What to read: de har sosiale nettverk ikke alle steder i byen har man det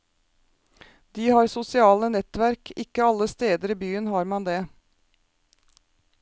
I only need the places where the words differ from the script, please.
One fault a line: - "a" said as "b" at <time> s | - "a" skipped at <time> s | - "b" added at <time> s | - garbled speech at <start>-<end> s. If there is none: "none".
none